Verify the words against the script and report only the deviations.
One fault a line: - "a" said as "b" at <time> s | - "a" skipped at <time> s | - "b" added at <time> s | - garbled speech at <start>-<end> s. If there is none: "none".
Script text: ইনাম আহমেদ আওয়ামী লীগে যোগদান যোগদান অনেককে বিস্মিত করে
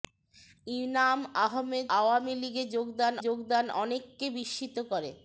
none